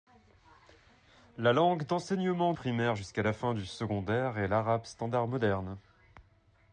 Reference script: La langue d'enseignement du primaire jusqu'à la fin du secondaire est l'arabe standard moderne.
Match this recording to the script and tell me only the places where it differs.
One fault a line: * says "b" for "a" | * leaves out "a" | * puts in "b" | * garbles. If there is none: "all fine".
* leaves out "du"